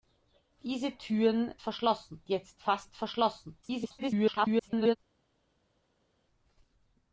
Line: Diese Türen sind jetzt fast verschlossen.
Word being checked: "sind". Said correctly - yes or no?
no